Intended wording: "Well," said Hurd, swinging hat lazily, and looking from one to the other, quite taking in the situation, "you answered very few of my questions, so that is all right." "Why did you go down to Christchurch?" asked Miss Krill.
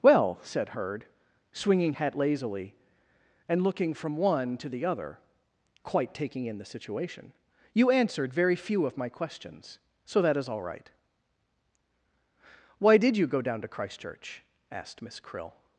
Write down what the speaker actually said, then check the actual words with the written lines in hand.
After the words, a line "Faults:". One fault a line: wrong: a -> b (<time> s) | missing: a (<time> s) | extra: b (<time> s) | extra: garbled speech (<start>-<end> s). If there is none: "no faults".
"Well," said Hurd, swinging hat lazily, and looking from one to the other, quite taking in the situation, "you answered very few of my questions, so that is all right." "Why did you go down to Christchurch?" asked Miss Krill.
Faults:
no faults